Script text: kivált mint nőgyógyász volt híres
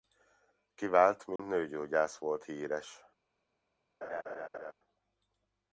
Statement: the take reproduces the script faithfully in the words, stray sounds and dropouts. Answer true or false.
false